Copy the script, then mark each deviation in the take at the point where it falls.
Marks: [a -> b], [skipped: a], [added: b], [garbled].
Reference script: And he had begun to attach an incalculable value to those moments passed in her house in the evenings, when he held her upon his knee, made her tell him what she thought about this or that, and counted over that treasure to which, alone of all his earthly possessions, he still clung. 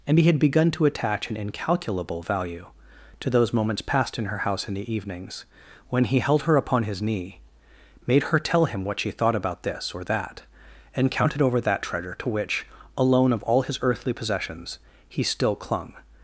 And he had begun to attach an incalculable value to those moments passed in her house in the evenings, when he held her upon his knee, made her tell him what she thought about this or that, and counted over that treasure to which, alone of all his earthly possessions, he still clung.